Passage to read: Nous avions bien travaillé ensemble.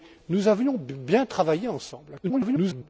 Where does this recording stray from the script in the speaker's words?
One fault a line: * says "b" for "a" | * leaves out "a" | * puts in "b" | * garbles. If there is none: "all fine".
* garbles